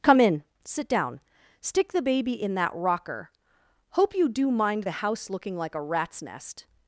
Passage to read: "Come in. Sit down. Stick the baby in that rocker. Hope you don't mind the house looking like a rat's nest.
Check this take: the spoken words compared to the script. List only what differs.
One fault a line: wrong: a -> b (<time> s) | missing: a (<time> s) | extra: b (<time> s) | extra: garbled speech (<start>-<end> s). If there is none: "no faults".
wrong: don't -> do (4.3 s)